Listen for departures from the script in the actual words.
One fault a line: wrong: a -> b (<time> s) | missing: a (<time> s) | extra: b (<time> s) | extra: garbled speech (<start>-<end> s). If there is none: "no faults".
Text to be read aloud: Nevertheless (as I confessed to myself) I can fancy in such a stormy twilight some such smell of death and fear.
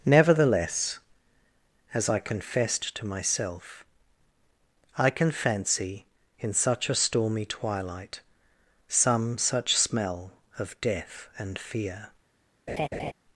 no faults